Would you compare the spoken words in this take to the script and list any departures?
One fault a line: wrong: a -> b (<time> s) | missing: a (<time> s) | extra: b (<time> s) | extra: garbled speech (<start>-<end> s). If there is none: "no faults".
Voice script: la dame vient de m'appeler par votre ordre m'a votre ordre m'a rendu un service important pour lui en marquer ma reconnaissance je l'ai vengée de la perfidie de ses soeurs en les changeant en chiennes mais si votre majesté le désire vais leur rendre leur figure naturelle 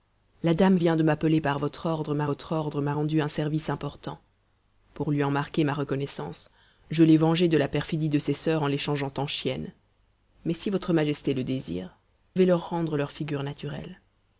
no faults